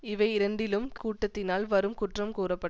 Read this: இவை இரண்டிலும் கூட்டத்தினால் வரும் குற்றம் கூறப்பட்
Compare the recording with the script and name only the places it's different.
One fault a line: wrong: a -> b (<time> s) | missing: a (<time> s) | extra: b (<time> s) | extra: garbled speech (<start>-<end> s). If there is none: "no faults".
no faults